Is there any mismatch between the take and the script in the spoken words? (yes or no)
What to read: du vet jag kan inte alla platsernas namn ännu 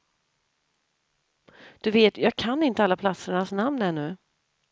no